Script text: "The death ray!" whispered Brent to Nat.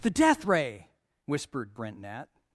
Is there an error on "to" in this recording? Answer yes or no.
yes